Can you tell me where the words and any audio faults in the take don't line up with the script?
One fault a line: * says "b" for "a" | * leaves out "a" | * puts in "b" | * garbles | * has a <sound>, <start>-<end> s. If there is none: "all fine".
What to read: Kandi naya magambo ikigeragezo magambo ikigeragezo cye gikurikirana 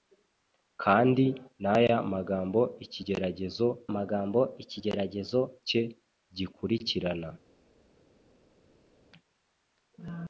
all fine